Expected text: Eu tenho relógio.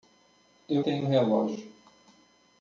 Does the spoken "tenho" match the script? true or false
true